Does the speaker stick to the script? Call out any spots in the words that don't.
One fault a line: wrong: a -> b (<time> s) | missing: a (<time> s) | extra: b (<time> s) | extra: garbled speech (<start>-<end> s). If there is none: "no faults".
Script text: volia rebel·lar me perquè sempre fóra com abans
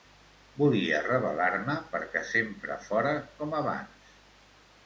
no faults